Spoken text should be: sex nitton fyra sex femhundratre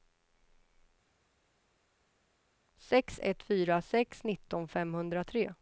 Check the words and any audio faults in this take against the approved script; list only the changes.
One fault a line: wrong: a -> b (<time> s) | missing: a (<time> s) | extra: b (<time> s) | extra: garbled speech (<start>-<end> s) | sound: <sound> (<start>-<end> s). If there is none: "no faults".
wrong: nitton -> ett (3.2 s)
extra: nitton (4.2 s)